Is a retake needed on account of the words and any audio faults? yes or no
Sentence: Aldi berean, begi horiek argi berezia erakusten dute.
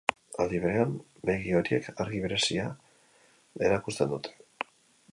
no